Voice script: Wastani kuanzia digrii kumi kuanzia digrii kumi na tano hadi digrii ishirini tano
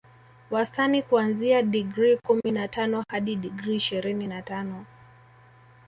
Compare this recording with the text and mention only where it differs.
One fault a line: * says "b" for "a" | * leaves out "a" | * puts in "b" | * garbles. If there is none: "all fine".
* leaves out "kuanzia digrii kumi"
* puts in "na"